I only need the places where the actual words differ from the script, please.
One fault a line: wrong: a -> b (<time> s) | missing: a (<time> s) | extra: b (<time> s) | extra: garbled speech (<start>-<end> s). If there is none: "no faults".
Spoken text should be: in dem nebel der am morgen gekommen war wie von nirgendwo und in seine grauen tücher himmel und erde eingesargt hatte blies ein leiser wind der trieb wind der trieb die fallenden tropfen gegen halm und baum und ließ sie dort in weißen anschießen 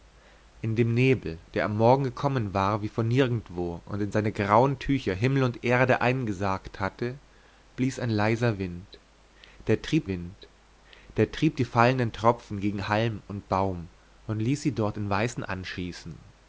no faults